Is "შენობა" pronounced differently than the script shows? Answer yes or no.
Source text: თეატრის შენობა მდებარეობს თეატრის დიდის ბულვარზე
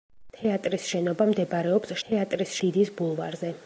no